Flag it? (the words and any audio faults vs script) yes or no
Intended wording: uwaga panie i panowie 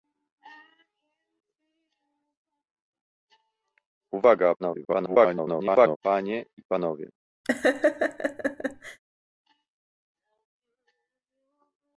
yes